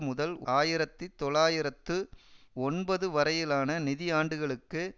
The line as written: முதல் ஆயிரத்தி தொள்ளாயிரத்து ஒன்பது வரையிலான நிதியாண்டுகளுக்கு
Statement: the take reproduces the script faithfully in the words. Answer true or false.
true